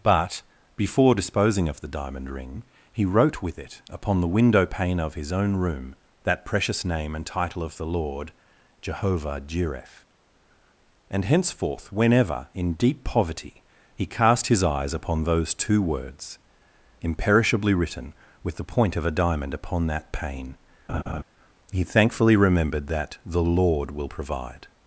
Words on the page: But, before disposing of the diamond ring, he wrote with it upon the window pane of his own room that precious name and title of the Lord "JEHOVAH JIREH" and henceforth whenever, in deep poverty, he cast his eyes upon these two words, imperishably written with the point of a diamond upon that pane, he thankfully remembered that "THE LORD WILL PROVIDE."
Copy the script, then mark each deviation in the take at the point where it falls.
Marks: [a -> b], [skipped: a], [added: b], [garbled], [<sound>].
But, before disposing of the diamond ring, he wrote with it upon the window pane of his own room that precious name and title of the Lord "JEHOVAH JIREH" and henceforth whenever, in deep poverty, he cast his eyes upon [these -> those] two words, imperishably written with the point of a diamond upon that pane, [laugh] he thankfully remembered that "THE LORD WILL PROVIDE."